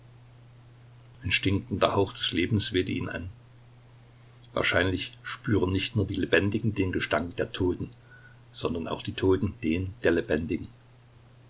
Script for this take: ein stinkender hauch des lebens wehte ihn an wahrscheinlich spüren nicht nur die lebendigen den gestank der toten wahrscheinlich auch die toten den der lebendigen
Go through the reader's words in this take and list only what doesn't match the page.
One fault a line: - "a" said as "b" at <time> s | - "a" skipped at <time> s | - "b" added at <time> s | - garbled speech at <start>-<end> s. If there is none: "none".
- "wahrscheinlich" said as "sondern" at 8.5 s